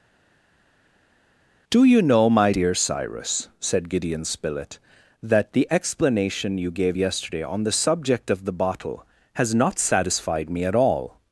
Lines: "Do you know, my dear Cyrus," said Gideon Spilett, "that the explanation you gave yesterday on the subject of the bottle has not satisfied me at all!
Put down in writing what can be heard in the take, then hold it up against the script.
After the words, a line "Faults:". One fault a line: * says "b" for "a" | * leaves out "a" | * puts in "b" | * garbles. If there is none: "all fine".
"Do you know, my dear Cyrus," said Gideon Spilett, "that the explanation you gave yesterday on the subject of the bottle has not satisfied me at all!
Faults:
all fine